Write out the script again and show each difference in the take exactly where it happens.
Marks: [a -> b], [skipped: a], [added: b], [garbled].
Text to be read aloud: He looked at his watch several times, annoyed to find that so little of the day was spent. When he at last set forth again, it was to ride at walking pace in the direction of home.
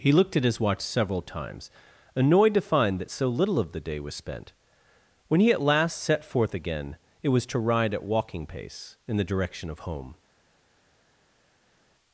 He looked at his watch several times, annoyed to find that so little of the day was spent. When he at last set forth again, it was to ride at walking pace in the direction of home.